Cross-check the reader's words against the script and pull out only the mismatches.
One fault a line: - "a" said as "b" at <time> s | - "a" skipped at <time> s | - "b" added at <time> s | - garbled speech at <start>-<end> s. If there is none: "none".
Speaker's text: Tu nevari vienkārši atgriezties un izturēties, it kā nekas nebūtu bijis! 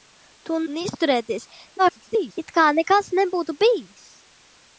- "nevari vienkārši atgriezties" skipped at 0.6 s
- garbled speech at 1.8-2.4 s